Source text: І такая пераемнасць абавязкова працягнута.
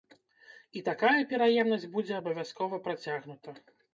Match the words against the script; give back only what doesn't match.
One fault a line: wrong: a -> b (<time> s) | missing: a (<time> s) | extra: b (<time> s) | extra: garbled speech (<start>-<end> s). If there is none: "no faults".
extra: будзе (2.0 s)